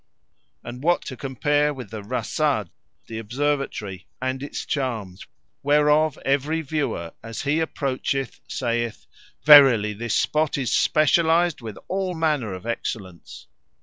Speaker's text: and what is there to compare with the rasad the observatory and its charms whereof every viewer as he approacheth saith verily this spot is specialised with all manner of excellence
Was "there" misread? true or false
true